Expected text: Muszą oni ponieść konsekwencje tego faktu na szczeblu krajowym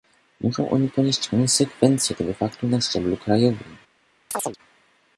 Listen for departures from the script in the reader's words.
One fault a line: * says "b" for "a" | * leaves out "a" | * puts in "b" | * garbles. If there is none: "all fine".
all fine